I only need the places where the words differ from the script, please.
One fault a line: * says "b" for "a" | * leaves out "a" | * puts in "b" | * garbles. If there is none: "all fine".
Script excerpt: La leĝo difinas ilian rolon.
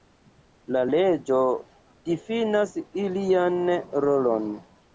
all fine